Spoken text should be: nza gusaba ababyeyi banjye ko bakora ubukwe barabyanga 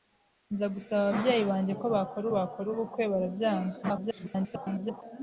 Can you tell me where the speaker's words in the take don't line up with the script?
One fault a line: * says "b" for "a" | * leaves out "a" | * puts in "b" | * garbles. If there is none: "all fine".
* puts in "bakora"
* garbles